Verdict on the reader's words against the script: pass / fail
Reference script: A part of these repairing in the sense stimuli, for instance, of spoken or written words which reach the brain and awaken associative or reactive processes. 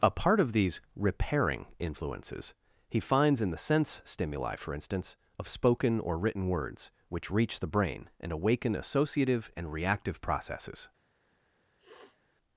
fail